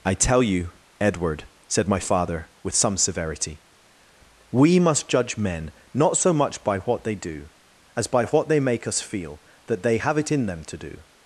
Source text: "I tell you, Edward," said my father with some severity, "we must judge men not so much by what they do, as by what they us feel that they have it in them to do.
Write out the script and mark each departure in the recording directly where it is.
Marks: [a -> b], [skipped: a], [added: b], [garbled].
"I tell you, Edward," said my father with some severity, "we must judge men not so much by what they do, as by what they [added: make] us feel that they have it in them to do.